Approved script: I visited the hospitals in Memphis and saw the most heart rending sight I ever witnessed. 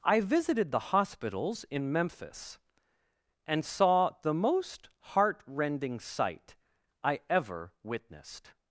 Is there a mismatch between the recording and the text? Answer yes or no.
no